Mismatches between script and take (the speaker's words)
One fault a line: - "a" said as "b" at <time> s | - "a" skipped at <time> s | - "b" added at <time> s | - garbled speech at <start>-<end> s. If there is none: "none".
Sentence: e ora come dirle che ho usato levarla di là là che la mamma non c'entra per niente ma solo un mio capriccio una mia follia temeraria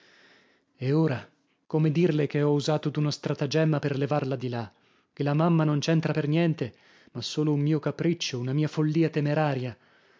- "d'uno stratagemma per" added at 2.9 s
- "là" skipped at 4.7 s